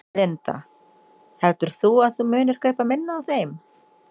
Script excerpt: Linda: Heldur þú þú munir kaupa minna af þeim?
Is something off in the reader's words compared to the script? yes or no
yes